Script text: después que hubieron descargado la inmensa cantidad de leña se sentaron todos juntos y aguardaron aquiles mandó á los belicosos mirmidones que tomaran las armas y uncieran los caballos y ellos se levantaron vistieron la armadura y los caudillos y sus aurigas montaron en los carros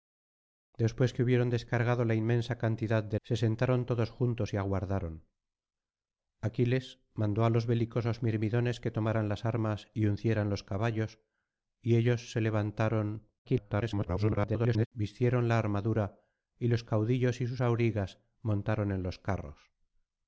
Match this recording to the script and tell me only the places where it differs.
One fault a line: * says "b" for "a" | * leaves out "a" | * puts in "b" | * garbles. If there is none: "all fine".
* leaves out "leña"
* garbles